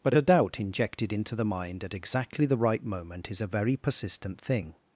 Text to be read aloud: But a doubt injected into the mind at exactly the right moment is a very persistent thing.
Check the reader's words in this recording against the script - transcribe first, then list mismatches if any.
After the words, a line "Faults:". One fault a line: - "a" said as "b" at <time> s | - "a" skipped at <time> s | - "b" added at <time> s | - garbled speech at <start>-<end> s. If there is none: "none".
But a doubt injected into the mind at exactly the right moment is a very persistent thing.
Faults:
none